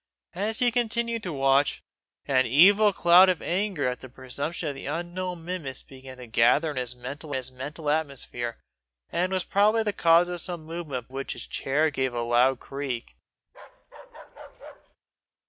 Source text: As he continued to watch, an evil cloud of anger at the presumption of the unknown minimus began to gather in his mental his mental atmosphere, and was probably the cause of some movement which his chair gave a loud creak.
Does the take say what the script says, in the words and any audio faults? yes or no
no